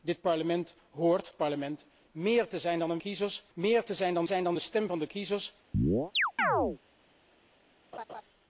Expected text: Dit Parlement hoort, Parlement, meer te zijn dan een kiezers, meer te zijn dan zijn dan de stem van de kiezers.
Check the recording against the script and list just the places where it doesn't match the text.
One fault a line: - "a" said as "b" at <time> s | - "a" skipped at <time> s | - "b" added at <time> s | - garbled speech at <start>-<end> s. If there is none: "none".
none